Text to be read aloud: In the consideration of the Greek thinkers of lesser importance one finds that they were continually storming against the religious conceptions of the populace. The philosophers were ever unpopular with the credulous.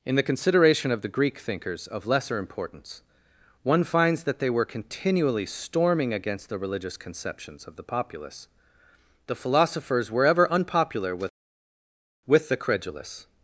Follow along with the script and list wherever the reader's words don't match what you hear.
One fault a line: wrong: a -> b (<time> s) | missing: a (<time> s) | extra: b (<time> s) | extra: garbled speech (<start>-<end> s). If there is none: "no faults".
extra: with (12.3 s)